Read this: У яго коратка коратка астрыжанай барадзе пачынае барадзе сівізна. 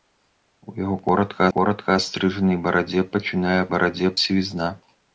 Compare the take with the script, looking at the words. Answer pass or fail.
pass